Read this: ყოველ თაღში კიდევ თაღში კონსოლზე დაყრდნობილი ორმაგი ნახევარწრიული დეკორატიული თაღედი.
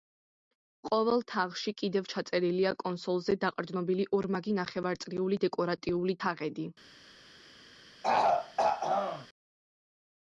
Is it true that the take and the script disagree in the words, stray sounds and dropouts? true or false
true